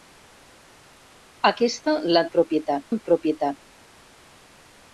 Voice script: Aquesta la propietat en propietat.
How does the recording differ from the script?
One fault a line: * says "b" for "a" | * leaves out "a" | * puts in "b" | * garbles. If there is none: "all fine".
all fine